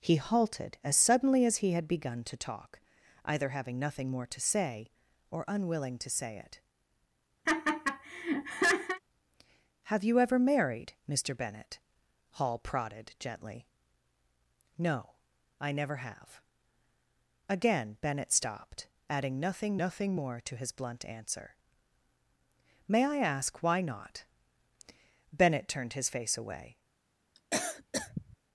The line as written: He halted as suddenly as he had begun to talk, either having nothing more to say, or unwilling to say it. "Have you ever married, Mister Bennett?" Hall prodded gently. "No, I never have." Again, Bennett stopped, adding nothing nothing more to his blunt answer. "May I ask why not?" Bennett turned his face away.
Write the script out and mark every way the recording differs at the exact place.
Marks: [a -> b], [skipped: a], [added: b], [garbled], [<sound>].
He halted as suddenly as he had begun to talk, either having nothing more to say, or unwilling to say it. [laugh] "Have you ever married, Mister Bennett?" Hall prodded gently. "No, I never have." Again, Bennett stopped, adding nothing nothing more to his blunt answer. "May I ask why not?" Bennett turned his face away. [cough]